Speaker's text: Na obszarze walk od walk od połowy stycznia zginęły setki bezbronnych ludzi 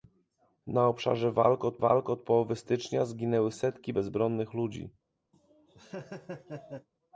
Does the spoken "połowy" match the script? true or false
true